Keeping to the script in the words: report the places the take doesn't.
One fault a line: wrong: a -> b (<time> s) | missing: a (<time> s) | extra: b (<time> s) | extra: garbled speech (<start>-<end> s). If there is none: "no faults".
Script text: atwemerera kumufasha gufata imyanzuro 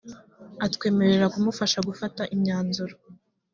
no faults